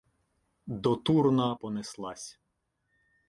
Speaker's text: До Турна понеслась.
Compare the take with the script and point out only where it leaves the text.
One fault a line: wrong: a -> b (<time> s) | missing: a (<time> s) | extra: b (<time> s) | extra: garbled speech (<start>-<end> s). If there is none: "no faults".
no faults